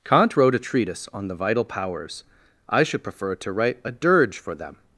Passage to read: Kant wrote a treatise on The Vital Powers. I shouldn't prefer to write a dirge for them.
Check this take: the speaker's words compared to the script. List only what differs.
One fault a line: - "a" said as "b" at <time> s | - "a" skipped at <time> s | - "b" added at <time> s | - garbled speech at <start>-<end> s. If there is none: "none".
- "shouldn't" said as "should" at 2.8 s